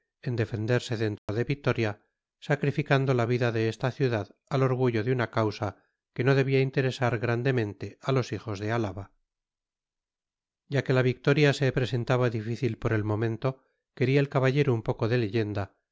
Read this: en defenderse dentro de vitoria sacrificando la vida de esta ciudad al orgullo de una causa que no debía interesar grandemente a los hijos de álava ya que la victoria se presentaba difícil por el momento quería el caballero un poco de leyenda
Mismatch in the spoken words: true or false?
false